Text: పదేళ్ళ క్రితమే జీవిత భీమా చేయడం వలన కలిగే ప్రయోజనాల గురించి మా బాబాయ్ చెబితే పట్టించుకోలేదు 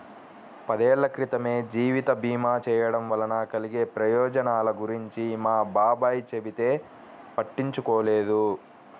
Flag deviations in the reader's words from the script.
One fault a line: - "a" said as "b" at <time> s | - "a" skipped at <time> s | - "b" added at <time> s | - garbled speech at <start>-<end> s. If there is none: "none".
none